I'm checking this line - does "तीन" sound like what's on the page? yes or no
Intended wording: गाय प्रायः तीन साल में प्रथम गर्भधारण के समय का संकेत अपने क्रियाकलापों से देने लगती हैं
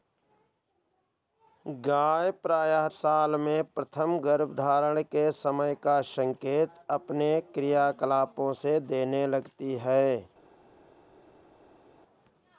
no